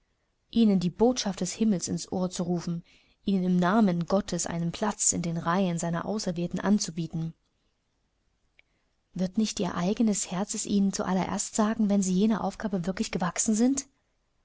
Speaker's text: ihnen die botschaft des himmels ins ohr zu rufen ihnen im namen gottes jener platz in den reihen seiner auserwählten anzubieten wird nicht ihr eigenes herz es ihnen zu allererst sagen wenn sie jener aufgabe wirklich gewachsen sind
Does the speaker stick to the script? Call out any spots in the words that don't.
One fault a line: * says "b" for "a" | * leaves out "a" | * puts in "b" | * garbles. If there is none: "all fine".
* says "einen" for "jener"